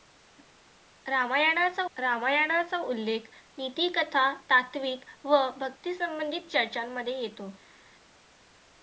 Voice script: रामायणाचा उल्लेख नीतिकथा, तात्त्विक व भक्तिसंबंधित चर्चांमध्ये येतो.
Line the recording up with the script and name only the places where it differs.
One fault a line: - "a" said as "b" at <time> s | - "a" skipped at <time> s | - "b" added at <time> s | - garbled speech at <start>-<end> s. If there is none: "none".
- "रामायणाचा" added at 2.0 s